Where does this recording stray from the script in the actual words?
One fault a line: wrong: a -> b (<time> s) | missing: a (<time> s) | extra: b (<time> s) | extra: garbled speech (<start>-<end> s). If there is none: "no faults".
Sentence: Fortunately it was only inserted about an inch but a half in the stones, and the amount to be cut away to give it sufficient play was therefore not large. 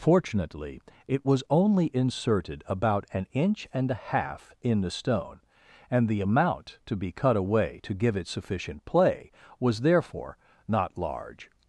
wrong: but -> and (3.7 s)
wrong: stones -> stone (4.9 s)